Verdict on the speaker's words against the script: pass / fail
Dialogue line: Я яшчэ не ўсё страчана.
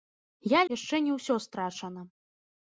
pass